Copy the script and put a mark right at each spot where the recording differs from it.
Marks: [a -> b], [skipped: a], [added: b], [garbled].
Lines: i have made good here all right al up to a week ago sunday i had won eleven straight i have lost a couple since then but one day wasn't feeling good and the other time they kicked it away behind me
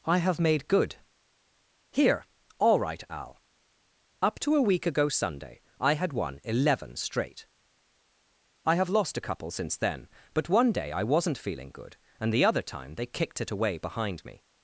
i have made good here all right al up to a week ago sunday i had won eleven straight i have lost a couple since then but one day [added: i] wasn't feeling good and the other time they kicked it away behind me